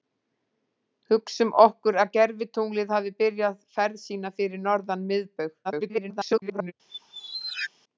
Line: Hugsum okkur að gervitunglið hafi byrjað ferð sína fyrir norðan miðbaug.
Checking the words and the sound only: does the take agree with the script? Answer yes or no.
no